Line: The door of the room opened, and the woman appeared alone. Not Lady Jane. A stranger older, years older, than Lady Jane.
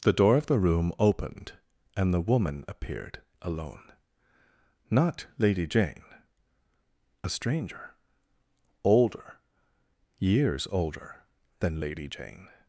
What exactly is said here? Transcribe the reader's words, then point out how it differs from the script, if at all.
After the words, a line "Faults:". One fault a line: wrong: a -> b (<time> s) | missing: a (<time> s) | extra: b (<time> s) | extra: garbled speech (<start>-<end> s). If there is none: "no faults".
The door of the room opened, and the woman appeared alone. Not Lady Jane. A stranger older, years older, than Lady Jane.
Faults:
no faults